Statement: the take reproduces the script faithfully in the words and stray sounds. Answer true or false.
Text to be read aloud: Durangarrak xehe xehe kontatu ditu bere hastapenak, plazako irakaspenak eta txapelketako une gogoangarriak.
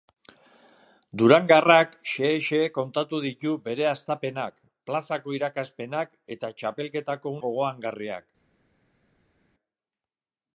false